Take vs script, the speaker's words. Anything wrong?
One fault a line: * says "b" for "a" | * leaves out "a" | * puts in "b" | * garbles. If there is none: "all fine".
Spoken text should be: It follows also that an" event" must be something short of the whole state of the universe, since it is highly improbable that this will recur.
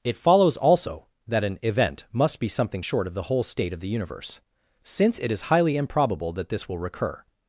all fine